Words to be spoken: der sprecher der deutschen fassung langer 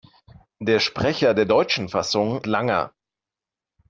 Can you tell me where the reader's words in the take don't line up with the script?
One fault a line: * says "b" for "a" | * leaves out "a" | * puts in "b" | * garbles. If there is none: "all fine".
all fine